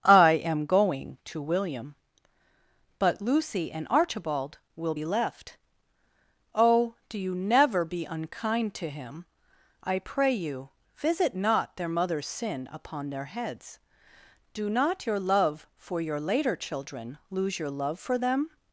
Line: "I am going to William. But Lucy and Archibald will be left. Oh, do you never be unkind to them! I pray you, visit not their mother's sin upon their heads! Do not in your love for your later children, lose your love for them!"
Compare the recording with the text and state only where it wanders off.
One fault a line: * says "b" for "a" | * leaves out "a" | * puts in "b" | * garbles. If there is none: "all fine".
* says "him" for "them"
* leaves out "in"